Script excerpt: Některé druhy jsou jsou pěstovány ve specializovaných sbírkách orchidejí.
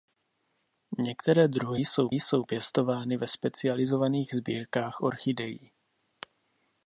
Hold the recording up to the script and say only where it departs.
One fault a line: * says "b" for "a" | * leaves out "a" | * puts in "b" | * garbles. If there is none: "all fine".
all fine